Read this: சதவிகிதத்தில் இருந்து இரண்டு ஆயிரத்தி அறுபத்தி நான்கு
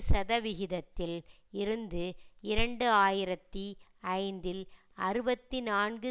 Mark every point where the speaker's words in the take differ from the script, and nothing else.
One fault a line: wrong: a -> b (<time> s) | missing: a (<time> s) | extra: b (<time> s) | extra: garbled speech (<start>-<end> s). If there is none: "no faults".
extra: ஐந்தில் (4.2 s)